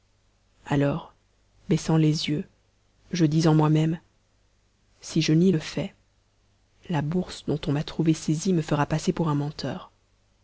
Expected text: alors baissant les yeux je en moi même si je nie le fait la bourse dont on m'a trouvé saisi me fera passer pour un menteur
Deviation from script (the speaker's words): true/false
true